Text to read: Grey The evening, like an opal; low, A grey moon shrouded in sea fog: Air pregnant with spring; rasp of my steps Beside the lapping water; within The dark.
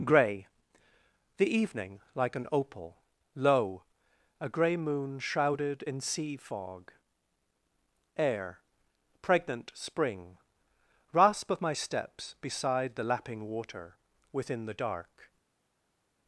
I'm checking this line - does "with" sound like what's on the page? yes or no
no